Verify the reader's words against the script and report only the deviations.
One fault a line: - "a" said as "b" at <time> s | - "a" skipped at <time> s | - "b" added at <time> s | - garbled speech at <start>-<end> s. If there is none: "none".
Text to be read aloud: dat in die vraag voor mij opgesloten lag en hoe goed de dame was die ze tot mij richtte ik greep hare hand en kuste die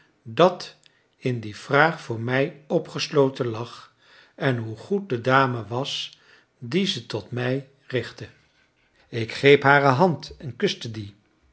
none